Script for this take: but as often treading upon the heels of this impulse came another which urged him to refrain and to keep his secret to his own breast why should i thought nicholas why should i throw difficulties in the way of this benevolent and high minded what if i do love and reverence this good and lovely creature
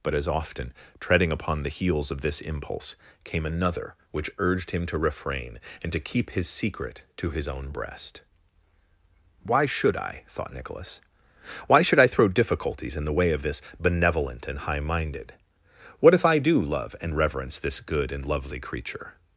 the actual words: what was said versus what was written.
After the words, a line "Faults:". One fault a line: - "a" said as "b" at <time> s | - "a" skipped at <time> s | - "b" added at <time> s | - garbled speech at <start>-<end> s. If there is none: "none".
but as often treading upon the heels of this impulse came another which urged him to refrain and to keep his secret to his own breast why should i thought nicholas why should i throw difficulties in the way of this benevolent and high minded what if i do love and reverence this good and lovely creature
Faults:
none